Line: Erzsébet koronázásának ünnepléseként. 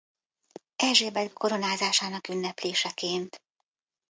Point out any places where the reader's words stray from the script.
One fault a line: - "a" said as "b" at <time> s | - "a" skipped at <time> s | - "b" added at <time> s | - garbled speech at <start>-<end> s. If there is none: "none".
none